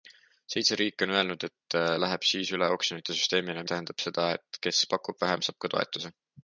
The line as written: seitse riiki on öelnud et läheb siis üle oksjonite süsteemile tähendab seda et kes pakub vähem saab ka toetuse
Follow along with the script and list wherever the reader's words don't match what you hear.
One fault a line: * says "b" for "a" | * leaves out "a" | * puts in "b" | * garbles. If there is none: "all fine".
all fine